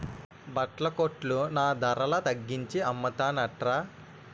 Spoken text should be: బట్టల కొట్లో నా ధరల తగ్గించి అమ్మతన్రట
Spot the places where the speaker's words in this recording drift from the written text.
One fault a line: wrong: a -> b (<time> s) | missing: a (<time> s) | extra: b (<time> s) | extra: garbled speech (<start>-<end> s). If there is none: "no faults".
no faults